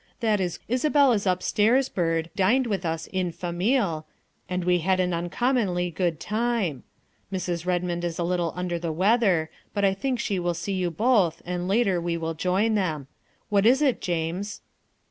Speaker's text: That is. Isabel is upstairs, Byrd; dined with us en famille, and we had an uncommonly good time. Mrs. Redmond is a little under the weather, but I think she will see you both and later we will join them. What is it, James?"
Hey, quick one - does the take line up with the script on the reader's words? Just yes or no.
yes